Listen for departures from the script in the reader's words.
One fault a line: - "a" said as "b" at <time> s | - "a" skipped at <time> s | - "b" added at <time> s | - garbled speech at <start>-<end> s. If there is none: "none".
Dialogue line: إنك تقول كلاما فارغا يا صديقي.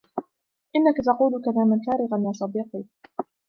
none